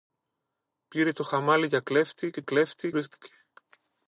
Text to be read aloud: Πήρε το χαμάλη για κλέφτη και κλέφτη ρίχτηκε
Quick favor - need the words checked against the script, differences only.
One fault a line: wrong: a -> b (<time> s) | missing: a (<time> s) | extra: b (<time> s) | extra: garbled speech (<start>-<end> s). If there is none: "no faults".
no faults